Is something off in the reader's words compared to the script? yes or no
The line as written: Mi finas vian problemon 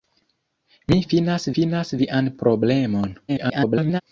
yes